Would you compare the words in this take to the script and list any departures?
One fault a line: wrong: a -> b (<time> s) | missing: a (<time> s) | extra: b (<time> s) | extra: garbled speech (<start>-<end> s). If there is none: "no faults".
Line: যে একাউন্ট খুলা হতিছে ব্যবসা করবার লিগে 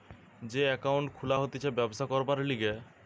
no faults